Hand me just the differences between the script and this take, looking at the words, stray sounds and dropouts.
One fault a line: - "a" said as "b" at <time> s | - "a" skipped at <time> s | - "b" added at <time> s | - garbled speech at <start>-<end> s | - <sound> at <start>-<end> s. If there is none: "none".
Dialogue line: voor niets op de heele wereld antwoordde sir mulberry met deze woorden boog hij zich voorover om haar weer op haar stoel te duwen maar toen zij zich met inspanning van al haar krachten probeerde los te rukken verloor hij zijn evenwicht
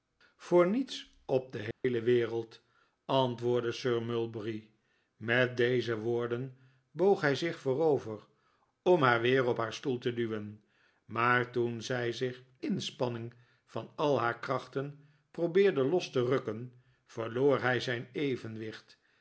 - dropout at 1.7-1.8 s
- "met" skipped at 12.4 s